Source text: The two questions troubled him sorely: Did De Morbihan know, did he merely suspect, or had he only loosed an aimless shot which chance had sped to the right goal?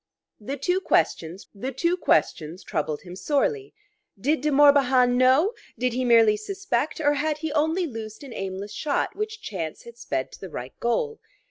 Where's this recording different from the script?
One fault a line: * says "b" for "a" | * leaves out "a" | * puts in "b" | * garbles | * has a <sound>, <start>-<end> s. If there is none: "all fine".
* puts in "the two questions"